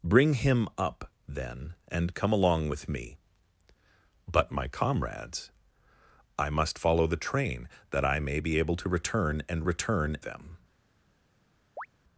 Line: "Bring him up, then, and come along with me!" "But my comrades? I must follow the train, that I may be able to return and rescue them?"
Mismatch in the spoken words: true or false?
true